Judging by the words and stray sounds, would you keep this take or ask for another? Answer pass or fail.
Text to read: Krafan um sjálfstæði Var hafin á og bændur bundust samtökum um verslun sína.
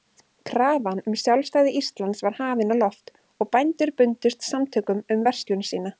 fail